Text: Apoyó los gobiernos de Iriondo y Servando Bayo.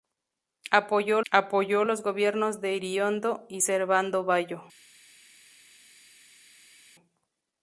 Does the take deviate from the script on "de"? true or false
false